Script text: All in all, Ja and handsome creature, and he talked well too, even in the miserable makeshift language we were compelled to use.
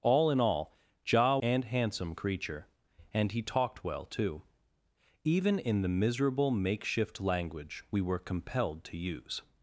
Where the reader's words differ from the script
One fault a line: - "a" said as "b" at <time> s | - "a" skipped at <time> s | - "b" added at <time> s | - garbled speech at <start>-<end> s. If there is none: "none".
none